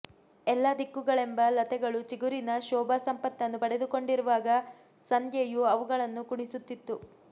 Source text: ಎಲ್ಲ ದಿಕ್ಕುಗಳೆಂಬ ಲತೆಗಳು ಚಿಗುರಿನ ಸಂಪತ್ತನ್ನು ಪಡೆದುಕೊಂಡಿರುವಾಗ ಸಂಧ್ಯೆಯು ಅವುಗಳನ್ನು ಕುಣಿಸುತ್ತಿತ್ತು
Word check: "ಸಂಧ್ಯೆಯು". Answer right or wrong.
right